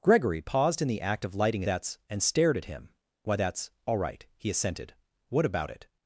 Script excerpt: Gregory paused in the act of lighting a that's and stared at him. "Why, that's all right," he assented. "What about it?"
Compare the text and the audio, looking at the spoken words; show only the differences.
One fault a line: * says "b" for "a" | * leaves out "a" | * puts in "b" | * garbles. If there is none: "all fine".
all fine